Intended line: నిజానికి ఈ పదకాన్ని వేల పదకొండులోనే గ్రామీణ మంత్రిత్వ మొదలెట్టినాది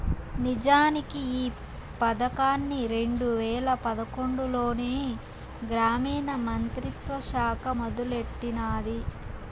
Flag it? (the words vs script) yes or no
yes